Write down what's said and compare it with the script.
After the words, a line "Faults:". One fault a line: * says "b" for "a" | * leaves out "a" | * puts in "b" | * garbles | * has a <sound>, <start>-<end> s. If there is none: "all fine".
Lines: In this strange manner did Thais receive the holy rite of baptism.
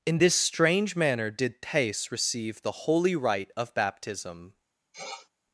In this strange manner did Thais receive the holy rite of baptism.
Faults:
* has a sniff, 4.9-5.3 s